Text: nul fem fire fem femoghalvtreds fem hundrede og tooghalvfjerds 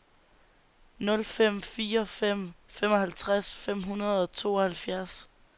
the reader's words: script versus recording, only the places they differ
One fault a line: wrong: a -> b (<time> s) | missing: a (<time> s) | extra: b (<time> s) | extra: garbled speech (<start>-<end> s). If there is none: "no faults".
no faults